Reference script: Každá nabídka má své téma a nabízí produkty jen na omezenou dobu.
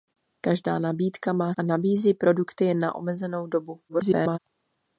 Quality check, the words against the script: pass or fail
fail